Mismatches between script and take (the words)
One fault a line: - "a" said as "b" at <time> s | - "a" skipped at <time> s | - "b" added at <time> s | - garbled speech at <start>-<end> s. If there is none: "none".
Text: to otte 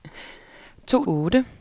none